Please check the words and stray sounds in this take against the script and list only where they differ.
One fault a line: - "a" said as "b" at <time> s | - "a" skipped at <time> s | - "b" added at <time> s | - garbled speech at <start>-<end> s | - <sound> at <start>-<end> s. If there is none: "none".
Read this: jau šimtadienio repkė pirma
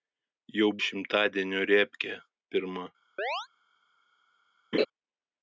- chirp at 3.2-3.5 s
- laugh at 4.7-4.9 s